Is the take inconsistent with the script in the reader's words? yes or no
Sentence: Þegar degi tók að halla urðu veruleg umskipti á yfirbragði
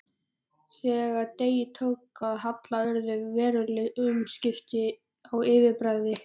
no